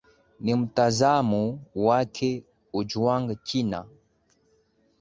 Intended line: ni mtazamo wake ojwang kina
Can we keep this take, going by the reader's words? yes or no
yes